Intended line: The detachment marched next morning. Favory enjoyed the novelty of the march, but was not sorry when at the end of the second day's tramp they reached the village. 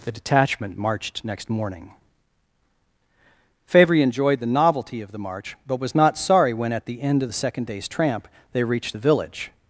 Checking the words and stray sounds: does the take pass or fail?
pass